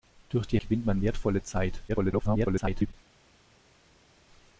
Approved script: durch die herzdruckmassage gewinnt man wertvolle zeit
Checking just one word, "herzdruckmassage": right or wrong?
wrong